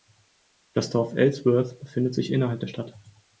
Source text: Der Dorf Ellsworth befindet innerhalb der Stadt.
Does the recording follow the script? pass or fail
fail